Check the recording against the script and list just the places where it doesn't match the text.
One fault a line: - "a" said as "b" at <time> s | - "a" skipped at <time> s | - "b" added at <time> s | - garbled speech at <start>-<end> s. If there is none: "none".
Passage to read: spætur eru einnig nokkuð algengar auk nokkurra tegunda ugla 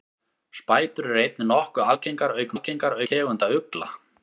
- "nokkurra" said as "algengar" at 2.5 s